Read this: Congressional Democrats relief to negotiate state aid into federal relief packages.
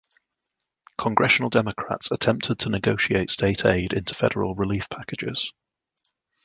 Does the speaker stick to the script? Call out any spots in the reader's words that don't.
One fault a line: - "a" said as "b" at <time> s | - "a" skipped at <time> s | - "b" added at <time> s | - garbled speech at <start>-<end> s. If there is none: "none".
- "relief" said as "attempted" at 2.1 s